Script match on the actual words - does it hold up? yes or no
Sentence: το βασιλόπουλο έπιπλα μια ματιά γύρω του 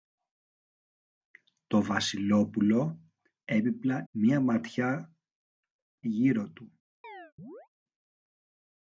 yes